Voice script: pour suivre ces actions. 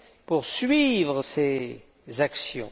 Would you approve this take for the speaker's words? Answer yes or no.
yes